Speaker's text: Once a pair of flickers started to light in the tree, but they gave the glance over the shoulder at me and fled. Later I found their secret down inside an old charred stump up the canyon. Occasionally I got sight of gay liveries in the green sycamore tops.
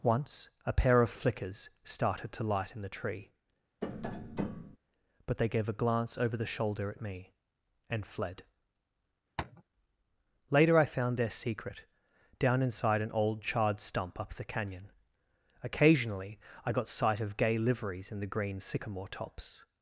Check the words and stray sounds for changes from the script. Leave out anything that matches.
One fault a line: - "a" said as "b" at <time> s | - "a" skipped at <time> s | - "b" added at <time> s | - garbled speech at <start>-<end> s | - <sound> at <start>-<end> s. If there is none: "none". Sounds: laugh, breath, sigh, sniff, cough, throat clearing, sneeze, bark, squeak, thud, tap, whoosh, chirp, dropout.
- tap at 3.8-4.8 s
- "the" said as "a" at 5.7 s
- tap at 9.4-9.6 s